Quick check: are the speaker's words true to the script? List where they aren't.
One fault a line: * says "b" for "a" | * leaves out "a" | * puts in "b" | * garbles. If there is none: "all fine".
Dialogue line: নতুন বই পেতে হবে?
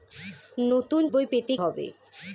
all fine